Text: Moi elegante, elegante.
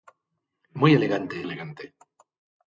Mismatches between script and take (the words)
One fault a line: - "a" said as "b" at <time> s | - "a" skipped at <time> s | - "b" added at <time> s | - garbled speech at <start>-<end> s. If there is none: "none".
none